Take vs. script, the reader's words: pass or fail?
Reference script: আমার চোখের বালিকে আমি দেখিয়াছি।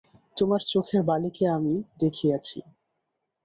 fail